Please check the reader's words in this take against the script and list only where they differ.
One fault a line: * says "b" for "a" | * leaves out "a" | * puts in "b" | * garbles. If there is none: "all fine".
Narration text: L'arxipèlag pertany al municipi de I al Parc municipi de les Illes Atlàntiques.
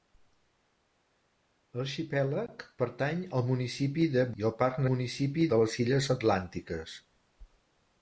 all fine